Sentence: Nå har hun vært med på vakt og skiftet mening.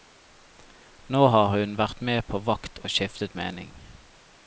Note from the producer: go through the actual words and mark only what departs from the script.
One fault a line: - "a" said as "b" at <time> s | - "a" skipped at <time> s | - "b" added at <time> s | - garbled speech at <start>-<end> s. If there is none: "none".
none